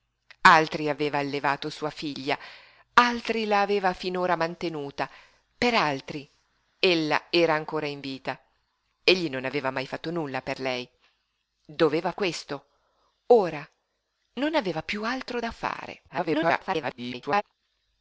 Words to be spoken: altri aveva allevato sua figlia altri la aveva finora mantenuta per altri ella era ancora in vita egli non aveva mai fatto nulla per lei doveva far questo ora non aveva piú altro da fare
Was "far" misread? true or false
true